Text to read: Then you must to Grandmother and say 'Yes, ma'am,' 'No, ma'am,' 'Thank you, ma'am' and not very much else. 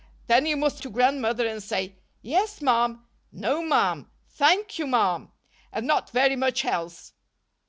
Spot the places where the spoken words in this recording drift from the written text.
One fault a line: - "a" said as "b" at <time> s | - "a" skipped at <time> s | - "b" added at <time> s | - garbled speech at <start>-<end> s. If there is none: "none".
none